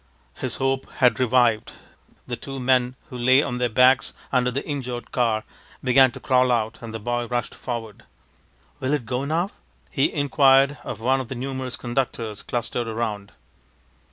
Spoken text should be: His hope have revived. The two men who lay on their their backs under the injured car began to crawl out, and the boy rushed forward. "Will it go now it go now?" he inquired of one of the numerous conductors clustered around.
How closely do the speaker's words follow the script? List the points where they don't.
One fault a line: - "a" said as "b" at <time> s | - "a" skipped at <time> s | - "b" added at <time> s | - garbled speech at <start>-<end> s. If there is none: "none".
- "have" said as "had" at 0.9 s
- "their" skipped at 3.7 s
- "it go now" skipped at 9.5 s